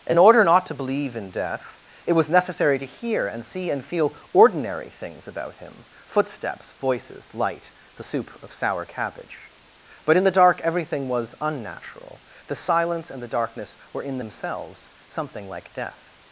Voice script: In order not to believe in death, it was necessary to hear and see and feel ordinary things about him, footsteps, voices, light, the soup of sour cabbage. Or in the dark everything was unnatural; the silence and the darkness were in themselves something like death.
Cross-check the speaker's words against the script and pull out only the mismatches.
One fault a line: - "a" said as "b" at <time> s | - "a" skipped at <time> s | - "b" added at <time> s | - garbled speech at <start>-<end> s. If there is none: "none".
- "Or" said as "But" at 10.0 s